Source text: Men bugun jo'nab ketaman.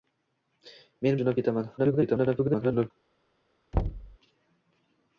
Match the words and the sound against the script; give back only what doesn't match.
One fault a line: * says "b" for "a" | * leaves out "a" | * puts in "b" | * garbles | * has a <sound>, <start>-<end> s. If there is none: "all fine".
* leaves out "bugun"
* garbles
* has a thud, 3.7-4.2 s